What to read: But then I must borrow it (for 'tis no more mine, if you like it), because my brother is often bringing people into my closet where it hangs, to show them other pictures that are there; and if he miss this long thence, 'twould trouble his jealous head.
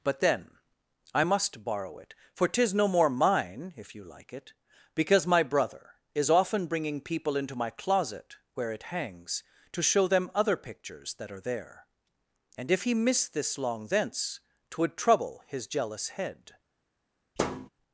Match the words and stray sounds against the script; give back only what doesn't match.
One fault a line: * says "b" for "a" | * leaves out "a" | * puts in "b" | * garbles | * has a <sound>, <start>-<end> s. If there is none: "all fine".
* has a thud, 17.4-17.7 s